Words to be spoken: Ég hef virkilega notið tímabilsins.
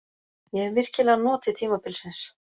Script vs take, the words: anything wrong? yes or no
no